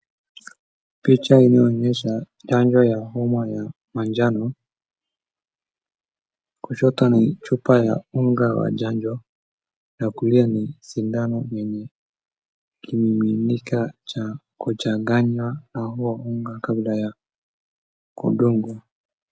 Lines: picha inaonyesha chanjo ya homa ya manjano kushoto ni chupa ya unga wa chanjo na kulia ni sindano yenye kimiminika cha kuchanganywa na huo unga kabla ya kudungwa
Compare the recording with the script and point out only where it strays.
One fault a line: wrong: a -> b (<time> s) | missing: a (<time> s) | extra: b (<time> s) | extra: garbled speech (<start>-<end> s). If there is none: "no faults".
no faults